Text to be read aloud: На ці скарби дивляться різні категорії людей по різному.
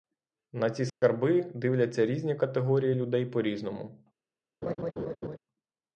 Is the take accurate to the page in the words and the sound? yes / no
no